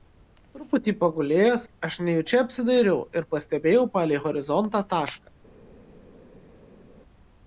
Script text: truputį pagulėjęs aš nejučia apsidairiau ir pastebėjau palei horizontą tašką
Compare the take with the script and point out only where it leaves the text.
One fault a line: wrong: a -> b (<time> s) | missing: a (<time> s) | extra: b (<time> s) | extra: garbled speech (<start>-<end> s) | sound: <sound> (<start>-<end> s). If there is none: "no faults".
no faults